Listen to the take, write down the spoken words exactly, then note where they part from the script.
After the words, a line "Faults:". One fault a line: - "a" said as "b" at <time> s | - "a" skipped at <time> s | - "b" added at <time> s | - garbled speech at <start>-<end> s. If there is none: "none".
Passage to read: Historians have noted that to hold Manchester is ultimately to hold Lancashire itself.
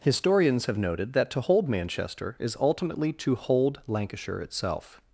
Historians have noted that to hold Manchester is ultimately to hold Lancashire itself.
Faults:
none